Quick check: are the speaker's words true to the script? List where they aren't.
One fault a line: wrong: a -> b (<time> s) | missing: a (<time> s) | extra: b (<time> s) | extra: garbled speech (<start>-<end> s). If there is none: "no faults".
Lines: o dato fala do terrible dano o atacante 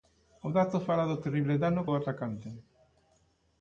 no faults